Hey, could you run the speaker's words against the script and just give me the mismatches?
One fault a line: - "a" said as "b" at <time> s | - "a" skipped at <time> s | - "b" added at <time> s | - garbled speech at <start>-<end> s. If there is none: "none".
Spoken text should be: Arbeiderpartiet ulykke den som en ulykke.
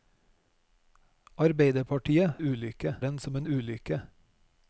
none